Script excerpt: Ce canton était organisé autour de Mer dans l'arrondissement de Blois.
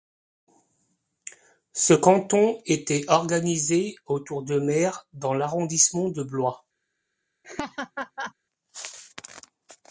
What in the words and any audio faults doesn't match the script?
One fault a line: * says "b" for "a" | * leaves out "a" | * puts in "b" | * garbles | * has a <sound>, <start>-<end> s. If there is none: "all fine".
* has a laugh, 7.4-8.3 s